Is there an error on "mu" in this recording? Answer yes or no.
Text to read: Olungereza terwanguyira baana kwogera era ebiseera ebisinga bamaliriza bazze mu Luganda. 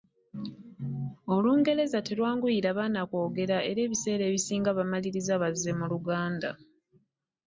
no